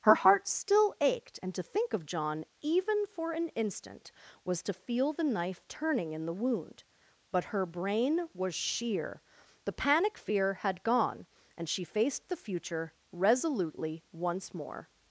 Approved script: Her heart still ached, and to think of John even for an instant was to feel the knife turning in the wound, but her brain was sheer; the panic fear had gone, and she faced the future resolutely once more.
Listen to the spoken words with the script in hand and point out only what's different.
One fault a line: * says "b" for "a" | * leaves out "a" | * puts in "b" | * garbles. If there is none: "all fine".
all fine